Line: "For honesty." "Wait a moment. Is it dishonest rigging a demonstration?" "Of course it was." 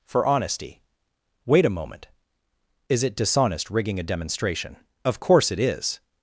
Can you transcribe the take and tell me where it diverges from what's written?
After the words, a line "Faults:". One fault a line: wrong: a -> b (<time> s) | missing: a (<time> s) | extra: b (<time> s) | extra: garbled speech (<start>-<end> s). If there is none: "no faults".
"For honesty." "Wait a moment. Is it dishonest rigging a demonstration?" "Of course it is."
Faults:
wrong: was -> is (5.6 s)